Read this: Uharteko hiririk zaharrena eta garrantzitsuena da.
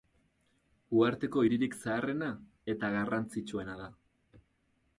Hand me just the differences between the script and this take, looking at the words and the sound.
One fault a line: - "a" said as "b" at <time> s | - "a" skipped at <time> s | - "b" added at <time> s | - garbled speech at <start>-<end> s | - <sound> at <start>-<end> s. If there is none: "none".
none